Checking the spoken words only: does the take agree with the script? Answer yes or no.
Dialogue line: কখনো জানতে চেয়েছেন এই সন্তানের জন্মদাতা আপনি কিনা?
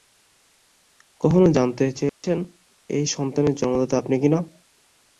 yes